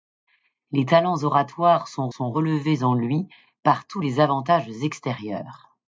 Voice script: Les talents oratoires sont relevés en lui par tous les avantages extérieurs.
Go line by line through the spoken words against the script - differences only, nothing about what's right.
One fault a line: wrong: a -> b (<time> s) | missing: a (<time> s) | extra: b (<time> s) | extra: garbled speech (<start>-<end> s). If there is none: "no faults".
extra: sont (2.1 s)